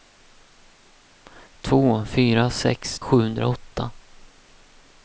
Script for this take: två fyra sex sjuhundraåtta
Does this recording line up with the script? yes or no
yes